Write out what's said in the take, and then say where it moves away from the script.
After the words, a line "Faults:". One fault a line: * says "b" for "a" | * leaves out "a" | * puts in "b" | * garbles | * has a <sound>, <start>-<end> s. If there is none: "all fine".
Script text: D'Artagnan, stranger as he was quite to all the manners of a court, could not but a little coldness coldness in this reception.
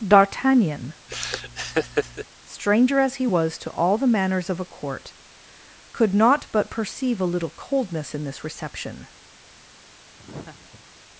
D'Artagnan, stranger as he was to all the manners of a court, could not but perceive a little coldness in this reception.
Faults:
* has a laugh, 1.1-2.3 s
* leaves out "quite"
* puts in "perceive"
* leaves out "coldness"
* has a laugh, 10.2-10.8 s